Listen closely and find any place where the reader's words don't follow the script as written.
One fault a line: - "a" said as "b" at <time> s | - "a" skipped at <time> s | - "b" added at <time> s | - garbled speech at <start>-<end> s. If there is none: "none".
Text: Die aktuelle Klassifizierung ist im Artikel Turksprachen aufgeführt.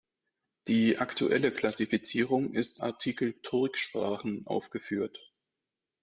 - "im" skipped at 2.8 s